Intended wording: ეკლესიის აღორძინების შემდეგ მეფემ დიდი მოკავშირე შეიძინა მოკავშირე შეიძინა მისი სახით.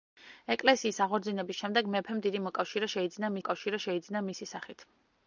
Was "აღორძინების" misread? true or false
false